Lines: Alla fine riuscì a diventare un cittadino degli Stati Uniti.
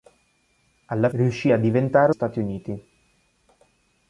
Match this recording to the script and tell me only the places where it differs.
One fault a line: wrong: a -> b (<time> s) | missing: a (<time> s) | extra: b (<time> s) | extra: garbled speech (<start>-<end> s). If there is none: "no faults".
missing: fine (1.1 s)
missing: un cittadino degli (2.1 s)